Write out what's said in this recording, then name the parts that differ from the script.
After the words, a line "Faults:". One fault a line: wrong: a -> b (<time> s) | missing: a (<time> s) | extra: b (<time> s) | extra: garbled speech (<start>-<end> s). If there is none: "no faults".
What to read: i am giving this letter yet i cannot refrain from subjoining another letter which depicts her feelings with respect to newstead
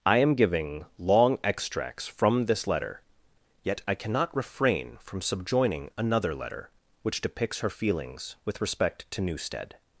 i am giving long extracts from this letter yet i cannot refrain from subjoining another letter which depicts her feelings with respect to newstead
Faults:
extra: long extracts from (1.0 s)